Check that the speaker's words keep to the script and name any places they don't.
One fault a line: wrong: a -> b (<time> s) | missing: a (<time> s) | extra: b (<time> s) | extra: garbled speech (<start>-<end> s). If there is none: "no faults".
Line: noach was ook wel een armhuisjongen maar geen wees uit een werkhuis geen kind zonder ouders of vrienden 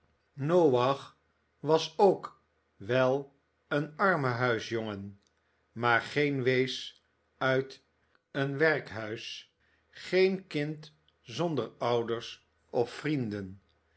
no faults